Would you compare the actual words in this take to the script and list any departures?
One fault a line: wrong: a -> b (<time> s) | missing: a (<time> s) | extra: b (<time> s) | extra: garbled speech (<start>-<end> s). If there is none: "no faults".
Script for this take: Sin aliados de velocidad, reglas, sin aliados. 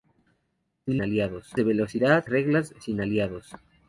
no faults